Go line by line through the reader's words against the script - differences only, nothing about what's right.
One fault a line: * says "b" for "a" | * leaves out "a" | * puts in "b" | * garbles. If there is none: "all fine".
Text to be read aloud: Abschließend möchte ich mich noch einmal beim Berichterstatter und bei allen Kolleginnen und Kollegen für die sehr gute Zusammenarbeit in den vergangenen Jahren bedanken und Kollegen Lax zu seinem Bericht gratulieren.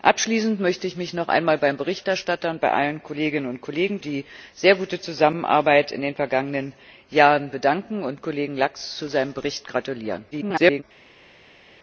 * leaves out "für"
* garbles